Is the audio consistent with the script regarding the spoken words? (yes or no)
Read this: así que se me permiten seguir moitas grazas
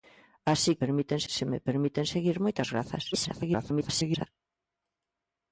no